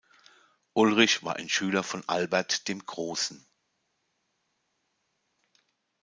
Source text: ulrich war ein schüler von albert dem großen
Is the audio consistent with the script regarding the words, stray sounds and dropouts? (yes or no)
yes